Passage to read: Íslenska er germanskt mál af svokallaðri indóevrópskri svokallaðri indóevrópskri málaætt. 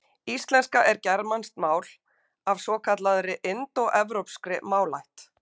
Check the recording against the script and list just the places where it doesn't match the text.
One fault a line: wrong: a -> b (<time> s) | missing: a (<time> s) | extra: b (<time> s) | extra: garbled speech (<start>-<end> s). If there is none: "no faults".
missing: svokallaðri indóevrópskri (4.6 s)